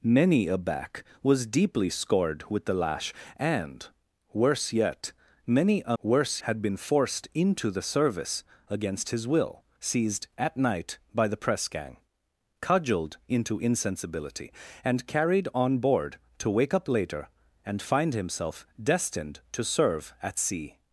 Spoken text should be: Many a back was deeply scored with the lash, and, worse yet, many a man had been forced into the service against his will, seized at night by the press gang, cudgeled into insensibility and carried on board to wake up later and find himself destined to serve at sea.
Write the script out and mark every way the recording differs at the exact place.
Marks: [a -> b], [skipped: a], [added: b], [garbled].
Many a back was deeply scored with the lash, and, worse yet, many a [man -> worse] had been forced into the service against his will, seized at night by the press gang, cudgeled into insensibility and carried on board to wake up later and find himself destined to serve at sea.